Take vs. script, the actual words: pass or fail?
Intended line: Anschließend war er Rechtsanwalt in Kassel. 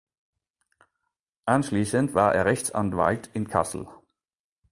pass